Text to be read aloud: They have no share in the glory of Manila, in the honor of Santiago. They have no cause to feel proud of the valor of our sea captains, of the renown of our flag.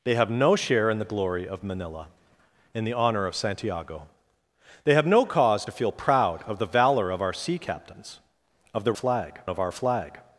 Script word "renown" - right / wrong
wrong